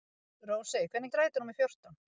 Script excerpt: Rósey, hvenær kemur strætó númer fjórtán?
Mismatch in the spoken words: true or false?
true